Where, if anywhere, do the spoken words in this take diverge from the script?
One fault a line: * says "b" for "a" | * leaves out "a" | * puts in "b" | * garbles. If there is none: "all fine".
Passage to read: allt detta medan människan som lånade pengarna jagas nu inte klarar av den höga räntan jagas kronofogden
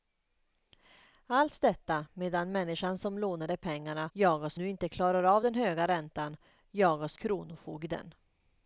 all fine